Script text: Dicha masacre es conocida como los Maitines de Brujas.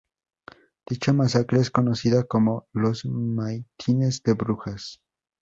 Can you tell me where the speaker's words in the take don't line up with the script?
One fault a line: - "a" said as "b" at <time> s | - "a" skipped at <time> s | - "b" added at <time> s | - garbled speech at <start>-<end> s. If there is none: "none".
none